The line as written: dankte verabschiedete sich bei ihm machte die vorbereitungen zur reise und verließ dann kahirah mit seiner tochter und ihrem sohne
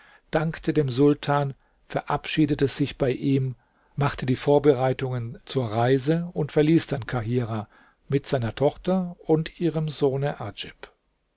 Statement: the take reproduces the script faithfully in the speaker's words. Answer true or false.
false